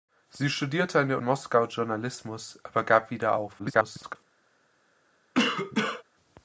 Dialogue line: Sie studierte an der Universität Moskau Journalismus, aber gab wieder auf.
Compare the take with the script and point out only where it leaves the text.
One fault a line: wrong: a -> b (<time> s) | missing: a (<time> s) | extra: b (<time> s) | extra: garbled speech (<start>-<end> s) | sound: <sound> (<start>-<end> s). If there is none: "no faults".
missing: Universität (1.2 s)
extra: garbled speech (3.6-4.2 s)
sound: cough (5.3-6.0 s)